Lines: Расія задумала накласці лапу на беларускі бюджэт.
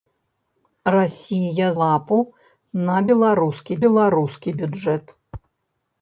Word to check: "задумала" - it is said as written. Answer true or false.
false